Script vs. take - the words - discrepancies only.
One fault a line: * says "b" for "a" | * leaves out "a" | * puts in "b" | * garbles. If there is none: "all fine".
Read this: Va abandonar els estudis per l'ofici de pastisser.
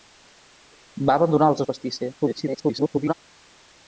* leaves out "estudis per l'ofici"
* garbles